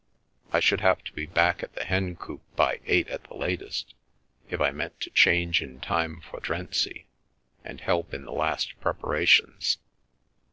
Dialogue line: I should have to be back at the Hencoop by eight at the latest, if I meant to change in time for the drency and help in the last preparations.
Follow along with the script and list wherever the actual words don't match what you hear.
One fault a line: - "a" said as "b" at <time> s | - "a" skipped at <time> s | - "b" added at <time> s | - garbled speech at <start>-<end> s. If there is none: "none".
- "the" skipped at 6.4 s